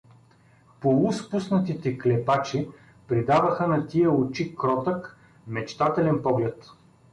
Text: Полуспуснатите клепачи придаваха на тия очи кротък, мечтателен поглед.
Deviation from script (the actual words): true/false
false